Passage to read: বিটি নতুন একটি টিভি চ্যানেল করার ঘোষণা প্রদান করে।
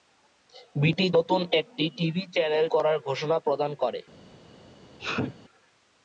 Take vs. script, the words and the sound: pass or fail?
fail